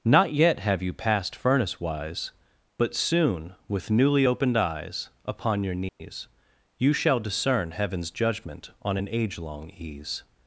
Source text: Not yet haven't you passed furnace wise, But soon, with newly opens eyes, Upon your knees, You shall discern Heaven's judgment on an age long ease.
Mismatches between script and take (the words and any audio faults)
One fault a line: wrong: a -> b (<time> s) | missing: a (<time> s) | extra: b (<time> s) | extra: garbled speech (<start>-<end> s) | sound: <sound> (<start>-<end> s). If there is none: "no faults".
wrong: haven't -> have (0.6 s)
wrong: opens -> opened (4.2 s)
sound: dropout (5.9-6.0 s)